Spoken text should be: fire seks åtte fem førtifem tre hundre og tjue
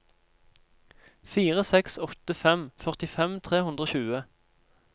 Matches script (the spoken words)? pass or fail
pass